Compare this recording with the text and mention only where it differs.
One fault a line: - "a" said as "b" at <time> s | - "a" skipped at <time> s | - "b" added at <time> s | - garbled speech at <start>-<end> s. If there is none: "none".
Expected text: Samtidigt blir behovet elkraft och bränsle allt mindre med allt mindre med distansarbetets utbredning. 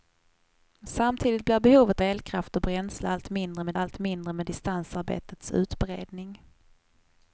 none